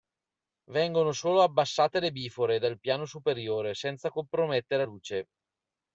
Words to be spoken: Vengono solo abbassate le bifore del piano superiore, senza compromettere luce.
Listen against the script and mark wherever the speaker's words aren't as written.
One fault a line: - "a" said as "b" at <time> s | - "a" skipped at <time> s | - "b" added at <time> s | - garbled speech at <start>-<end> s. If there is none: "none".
none